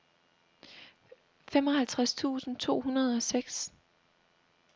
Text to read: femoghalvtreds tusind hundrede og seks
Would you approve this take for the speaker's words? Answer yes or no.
no